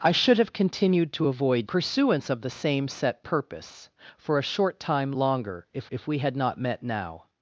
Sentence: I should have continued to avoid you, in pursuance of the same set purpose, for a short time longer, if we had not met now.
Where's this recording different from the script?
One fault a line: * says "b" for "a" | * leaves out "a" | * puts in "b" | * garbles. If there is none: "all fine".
* leaves out "you in"
* puts in "if"